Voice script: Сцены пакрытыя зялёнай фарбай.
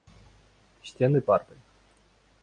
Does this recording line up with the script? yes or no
no